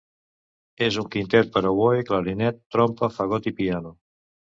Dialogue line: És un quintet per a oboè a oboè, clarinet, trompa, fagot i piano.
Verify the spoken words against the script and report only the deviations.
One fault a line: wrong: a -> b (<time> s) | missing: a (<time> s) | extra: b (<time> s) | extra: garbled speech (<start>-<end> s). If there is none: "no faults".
missing: a oboè (2.0 s)